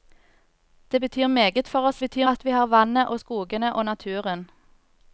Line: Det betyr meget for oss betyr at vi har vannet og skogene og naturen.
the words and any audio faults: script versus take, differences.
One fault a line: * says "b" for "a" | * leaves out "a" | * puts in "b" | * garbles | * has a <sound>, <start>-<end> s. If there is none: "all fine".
all fine